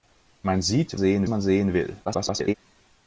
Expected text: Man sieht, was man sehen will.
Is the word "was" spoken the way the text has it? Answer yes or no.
no